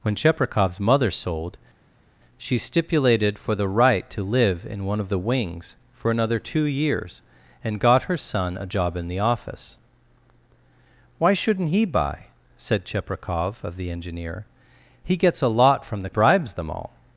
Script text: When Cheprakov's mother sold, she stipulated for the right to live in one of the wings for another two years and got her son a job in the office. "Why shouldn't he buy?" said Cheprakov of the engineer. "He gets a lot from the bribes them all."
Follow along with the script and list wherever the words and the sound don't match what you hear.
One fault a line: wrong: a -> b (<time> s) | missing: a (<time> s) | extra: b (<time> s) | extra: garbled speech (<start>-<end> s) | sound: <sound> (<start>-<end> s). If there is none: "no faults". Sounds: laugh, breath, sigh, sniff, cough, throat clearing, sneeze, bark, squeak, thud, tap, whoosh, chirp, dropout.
no faults